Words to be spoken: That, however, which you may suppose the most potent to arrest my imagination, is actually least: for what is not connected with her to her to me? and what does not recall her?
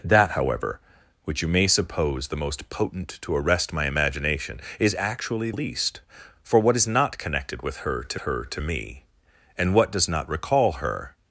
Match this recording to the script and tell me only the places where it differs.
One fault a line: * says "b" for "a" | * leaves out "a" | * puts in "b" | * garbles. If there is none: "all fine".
all fine